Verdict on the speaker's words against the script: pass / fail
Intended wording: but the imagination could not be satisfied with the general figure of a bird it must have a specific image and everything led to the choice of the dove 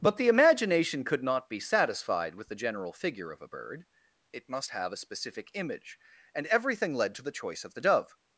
pass